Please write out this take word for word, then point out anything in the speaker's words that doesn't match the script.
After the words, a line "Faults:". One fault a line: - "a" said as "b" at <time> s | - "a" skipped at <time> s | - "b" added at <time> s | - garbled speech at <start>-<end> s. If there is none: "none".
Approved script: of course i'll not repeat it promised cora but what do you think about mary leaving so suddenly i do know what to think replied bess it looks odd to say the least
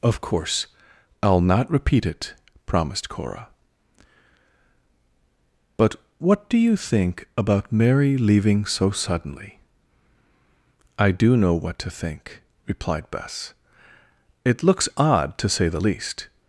of course i'll not repeat it promised cora but what do you think about mary leaving so suddenly i do know what to think replied bess it looks odd to say the least
Faults:
none